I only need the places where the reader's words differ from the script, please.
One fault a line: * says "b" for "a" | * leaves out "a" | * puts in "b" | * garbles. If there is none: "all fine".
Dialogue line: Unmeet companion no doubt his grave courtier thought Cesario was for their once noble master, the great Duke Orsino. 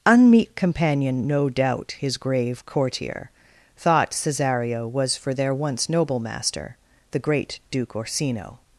all fine